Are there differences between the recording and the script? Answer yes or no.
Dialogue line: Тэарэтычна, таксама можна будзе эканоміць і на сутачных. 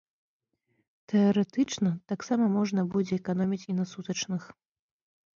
no